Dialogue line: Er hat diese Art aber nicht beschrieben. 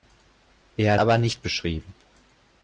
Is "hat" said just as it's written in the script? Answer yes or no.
no